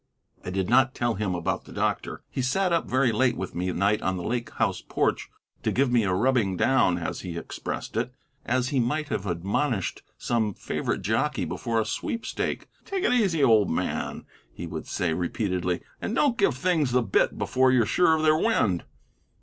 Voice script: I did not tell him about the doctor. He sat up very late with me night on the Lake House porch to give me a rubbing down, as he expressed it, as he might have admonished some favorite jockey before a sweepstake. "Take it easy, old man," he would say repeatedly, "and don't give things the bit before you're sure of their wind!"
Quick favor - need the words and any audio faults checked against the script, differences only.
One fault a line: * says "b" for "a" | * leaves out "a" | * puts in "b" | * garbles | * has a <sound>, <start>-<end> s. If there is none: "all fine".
all fine